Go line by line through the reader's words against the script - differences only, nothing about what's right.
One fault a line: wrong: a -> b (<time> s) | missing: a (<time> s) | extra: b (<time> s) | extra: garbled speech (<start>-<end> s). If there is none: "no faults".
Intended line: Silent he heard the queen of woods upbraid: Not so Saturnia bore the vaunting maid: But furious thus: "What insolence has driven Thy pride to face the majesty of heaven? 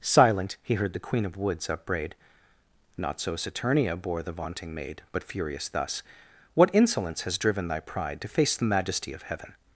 no faults